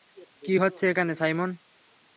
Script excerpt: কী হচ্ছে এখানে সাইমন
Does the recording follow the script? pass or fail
pass